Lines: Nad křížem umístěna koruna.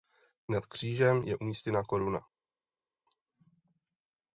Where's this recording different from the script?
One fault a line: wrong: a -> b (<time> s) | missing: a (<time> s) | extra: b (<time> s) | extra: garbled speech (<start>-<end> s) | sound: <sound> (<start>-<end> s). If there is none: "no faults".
extra: je (1.2 s)